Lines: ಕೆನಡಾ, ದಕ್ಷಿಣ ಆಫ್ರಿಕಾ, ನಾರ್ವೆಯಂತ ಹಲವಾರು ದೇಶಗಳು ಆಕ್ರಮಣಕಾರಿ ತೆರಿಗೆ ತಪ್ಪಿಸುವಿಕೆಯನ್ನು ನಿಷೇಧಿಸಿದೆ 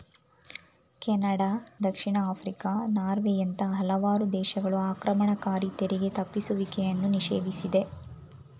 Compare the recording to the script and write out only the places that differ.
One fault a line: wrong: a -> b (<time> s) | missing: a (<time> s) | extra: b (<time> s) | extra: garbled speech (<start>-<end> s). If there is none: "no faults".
no faults